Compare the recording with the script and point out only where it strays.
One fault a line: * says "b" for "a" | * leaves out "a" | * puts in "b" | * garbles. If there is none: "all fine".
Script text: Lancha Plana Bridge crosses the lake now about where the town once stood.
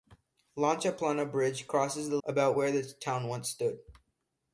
* leaves out "lake now"